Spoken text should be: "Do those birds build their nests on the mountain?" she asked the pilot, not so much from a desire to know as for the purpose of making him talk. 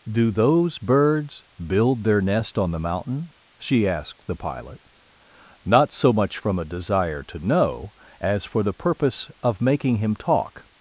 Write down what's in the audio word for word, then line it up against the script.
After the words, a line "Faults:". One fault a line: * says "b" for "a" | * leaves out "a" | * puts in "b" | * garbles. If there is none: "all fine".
"Do those birds build their nest on the mountain?" she asked the pilot, not so much from a desire to know as for the purpose of making him talk.
Faults:
* says "nest" for "nests"